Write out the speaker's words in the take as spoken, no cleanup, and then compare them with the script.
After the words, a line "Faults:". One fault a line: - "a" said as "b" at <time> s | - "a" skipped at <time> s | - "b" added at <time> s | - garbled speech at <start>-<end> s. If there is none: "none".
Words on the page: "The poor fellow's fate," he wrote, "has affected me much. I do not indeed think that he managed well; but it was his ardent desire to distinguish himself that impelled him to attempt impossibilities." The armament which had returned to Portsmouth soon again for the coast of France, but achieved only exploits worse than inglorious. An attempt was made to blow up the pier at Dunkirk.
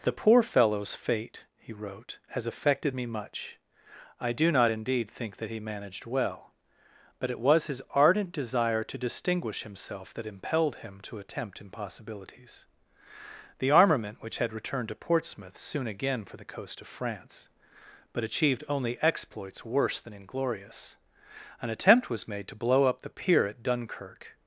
"The poor fellow's fate," he wrote, "has affected me much. I do not indeed think that he managed well; but it was his ardent desire to distinguish himself that impelled him to attempt impossibilities." The armament which had returned to Portsmouth soon again for the coast of France, but achieved only exploits worse than inglorious. An attempt was made to blow up the pier at Dunkirk.
Faults:
none